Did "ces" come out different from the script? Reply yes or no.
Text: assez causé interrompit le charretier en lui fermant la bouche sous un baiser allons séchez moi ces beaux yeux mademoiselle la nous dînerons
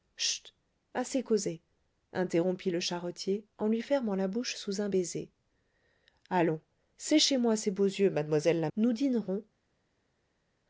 no